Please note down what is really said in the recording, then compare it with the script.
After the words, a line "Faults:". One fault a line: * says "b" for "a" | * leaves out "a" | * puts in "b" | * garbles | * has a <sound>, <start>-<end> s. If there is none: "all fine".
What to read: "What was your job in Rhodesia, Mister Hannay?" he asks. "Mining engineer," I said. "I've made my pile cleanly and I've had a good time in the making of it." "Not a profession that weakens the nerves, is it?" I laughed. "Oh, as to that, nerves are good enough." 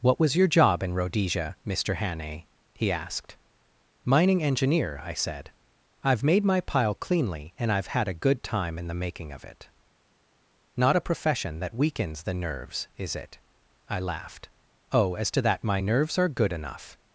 "What was your job in Rhodesia, Mister Hannay?" he asked. "Mining engineer," I said. "I've made my pile cleanly and I've had a good time in the making of it." "Not a profession that weakens the nerves, is it?" I laughed. "Oh, as to that, my nerves are good enough."
Faults:
* says "asked" for "asks"
* puts in "my"